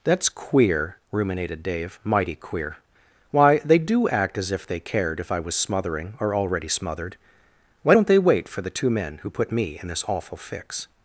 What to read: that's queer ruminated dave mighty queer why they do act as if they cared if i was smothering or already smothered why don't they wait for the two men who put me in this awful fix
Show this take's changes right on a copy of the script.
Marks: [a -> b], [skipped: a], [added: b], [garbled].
that's queer ruminated dave mighty queer why they do act as if they cared if i was smothering or already smothered why don't they wait for the two men who put me in this awful fix